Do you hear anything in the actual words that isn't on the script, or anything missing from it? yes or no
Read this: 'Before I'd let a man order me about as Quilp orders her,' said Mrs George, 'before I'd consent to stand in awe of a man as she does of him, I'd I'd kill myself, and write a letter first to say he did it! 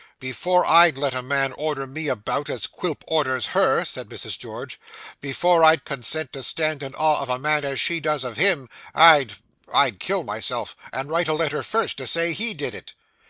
no